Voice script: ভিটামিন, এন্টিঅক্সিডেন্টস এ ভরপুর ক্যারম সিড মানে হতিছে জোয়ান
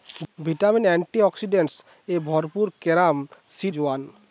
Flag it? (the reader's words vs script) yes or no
yes